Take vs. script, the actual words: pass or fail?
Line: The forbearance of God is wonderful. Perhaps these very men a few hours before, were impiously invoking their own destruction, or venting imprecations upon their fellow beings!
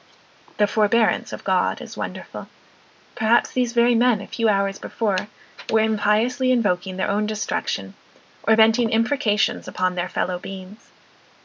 pass